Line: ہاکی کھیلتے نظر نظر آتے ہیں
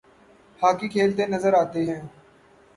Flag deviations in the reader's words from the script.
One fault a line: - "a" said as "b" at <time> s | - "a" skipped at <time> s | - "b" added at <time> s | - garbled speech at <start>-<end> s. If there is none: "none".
- "نظر" skipped at 1.5 s